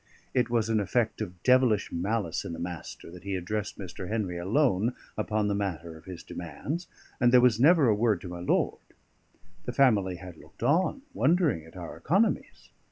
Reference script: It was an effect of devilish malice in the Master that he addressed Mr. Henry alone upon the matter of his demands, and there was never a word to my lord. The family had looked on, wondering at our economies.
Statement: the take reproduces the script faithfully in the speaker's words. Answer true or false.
true